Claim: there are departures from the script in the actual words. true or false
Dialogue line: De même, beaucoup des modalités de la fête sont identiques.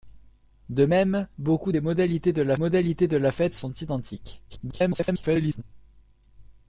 true